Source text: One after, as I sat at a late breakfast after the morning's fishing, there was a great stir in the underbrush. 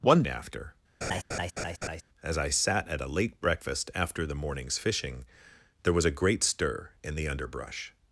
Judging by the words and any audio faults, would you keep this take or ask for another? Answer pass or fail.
fail